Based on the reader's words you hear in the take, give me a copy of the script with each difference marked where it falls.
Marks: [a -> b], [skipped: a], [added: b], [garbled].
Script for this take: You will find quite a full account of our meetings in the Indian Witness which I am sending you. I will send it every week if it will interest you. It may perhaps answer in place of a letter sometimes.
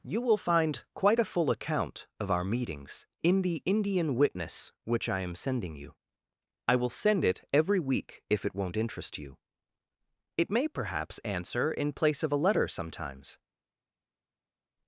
You will find quite a full account of our meetings in the Indian Witness which I am sending you. I will send it every week if it [will -> won't] interest you. It may perhaps answer in place of a letter sometimes.